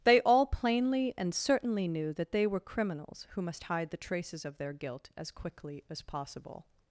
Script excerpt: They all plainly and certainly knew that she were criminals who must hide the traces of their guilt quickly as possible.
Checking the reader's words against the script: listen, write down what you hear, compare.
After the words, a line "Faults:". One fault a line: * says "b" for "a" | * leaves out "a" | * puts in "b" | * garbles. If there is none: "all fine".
They all plainly and certainly knew that they were criminals who must hide the traces of their guilt as quickly as possible.
Faults:
* says "they" for "she"
* puts in "as"